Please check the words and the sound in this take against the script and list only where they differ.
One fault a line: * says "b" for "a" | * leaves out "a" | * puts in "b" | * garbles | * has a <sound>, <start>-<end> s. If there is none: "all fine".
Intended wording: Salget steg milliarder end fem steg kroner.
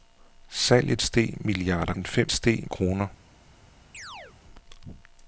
* has a chirp, 3.9-4.4 s